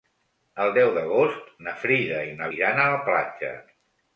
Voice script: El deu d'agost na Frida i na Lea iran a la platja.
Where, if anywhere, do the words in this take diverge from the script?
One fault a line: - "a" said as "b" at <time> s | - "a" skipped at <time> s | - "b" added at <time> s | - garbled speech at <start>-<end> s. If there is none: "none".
- "Lea" skipped at 2.5 s